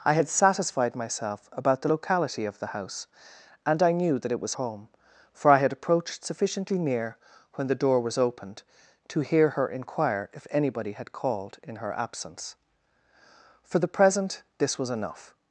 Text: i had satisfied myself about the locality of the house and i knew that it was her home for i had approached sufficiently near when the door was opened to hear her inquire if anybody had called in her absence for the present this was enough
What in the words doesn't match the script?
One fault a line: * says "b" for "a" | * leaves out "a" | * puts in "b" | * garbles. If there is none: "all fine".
* leaves out "her"